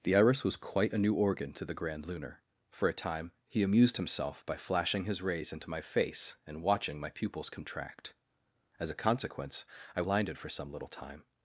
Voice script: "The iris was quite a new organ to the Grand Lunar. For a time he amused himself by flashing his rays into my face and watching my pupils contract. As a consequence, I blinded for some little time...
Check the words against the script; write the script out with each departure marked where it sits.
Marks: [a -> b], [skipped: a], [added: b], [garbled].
"The iris was quite a new organ to the Grand Lunar. For a time he amused himself by flashing his rays into my face and watching my pupils contract. As a consequence, I blinded for some little time...